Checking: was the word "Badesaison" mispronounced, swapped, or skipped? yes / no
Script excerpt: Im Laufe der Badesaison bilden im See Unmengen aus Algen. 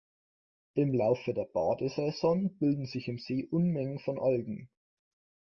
no